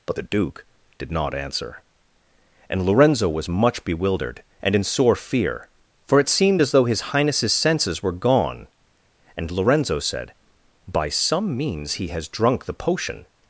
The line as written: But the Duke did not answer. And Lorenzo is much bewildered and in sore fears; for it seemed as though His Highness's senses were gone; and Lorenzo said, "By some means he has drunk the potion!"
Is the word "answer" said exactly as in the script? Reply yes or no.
yes